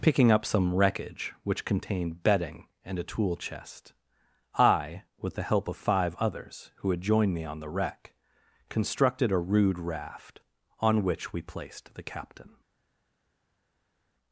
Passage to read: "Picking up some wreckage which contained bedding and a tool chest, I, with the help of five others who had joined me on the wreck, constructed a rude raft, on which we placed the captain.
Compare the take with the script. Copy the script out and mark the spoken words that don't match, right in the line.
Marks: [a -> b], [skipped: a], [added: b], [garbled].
"Picking up some wreckage which contained bedding and a tool chest, I, with the help of five others who had joined me on the wreck, constructed a rude raft, on which we placed the captain.